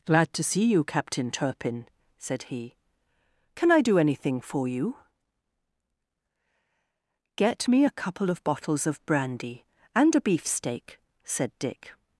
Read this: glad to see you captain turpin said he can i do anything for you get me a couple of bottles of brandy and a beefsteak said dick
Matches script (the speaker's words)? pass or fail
pass